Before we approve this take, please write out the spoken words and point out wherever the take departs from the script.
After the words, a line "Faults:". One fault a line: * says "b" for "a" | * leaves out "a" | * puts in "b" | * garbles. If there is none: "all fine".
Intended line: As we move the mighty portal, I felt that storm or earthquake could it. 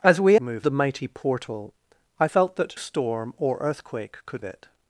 As we move the mighty portal, I felt that storm or earthquake could it.
Faults:
all fine